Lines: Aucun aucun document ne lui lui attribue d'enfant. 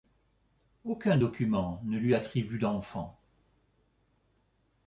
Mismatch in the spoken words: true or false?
true